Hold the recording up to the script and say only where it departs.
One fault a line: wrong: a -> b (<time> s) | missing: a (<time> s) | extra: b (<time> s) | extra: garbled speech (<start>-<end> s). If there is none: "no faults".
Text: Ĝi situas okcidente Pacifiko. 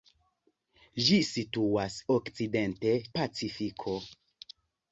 no faults